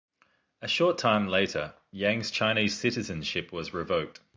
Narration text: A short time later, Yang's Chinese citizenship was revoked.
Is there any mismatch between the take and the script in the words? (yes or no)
no